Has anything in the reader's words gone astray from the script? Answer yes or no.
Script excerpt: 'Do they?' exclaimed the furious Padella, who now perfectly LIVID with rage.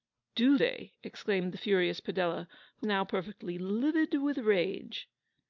no